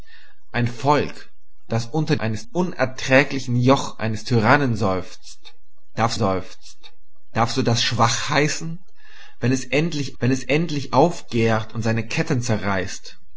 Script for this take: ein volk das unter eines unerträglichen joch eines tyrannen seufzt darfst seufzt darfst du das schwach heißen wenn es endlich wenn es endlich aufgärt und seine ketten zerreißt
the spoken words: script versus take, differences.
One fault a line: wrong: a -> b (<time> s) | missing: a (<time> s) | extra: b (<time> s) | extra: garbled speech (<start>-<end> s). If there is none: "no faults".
no faults